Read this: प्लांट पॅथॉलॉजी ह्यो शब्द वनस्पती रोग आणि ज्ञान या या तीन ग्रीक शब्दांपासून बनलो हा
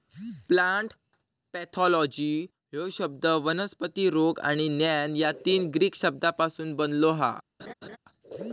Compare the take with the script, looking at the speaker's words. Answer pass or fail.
fail